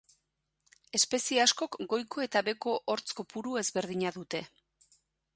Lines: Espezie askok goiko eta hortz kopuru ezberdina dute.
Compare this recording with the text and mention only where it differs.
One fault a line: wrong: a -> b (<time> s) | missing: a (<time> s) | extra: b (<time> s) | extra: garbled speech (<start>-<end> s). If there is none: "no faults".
extra: beheko (2.5 s)